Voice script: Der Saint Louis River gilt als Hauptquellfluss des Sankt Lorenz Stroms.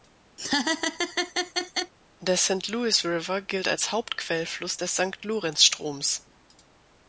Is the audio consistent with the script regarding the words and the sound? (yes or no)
no